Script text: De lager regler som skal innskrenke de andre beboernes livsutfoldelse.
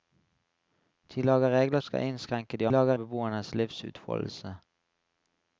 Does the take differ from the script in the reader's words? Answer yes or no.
yes